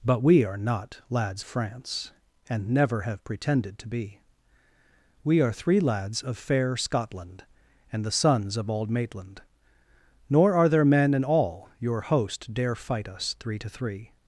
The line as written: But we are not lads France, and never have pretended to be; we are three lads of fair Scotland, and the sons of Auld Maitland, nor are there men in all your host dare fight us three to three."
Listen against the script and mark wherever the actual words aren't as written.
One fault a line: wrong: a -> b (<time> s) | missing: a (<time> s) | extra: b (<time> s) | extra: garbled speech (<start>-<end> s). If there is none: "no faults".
no faults